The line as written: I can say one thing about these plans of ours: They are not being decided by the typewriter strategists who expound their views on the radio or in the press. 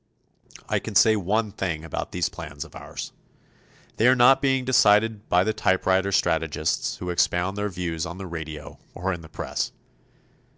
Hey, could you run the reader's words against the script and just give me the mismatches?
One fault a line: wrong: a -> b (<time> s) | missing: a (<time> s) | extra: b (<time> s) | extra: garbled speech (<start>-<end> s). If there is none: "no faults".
no faults